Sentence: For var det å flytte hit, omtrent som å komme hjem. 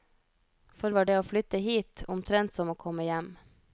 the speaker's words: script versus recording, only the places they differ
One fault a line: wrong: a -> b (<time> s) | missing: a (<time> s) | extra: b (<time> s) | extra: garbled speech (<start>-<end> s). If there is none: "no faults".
no faults